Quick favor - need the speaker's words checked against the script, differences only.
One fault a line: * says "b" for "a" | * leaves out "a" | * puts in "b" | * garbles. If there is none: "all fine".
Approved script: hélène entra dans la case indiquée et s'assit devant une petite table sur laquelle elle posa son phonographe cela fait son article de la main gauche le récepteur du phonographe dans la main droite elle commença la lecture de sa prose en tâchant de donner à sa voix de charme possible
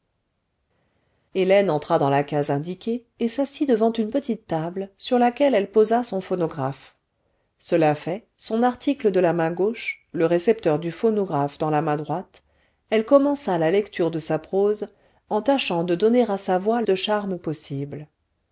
all fine